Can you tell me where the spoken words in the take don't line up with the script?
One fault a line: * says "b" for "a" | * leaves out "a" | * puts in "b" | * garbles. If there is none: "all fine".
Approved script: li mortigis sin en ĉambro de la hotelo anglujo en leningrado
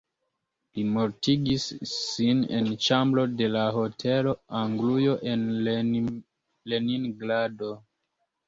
all fine